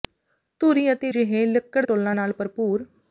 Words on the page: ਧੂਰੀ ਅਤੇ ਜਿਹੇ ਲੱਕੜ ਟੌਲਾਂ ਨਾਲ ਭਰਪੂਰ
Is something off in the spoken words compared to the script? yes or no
no